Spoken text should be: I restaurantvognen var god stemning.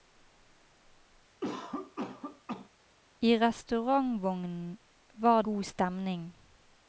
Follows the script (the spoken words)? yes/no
yes